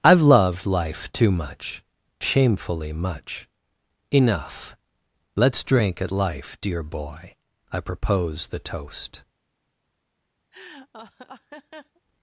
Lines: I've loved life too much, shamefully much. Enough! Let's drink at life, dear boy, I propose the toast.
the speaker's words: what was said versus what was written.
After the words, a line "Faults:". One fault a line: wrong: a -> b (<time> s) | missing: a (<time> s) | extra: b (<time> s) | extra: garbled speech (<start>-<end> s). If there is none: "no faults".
I've loved life too much, shamefully much. Enough! Let's drink at life, dear boy, I propose the toast.
Faults:
no faults